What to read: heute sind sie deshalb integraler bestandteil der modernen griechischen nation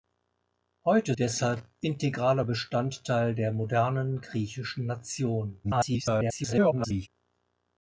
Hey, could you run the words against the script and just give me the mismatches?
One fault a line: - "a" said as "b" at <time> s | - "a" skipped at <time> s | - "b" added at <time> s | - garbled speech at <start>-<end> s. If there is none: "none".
- "sind sie" skipped at 1.1 s
- garbled speech at 5.6-7.1 s